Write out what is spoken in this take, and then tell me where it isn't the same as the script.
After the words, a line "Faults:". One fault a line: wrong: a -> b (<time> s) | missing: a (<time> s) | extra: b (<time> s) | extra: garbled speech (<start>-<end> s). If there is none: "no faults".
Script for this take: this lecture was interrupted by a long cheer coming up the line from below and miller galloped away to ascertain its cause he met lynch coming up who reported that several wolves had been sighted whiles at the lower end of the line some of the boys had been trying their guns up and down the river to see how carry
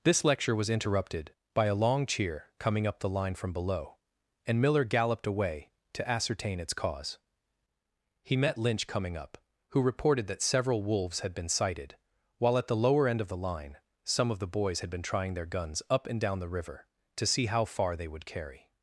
this lecture was interrupted by a long cheer coming up the line from below and miller galloped away to ascertain its cause he met lynch coming up who reported that several wolves had been sighted while at the lower end of the line some of the boys had been trying their guns up and down the river to see how far they would carry
Faults:
wrong: whiles -> while (12.4 s)
extra: far they would (17.6 s)